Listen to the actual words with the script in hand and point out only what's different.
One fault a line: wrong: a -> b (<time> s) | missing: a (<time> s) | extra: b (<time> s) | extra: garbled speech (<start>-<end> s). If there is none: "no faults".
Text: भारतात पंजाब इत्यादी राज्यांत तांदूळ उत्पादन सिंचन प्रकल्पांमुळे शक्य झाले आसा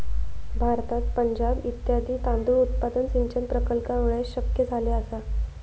missing: राज्यांत (2.1 s)